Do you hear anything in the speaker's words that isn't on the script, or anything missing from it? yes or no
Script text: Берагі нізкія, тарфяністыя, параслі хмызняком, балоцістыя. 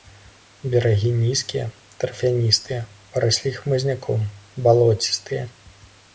no